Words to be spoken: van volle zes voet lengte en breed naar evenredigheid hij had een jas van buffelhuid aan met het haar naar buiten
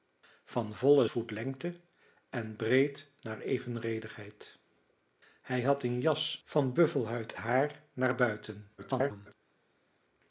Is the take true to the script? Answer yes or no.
no